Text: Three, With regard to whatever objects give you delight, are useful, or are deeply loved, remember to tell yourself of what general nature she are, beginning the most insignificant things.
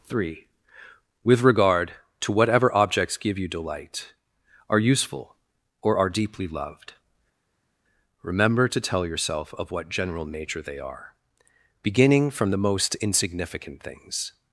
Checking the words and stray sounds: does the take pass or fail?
fail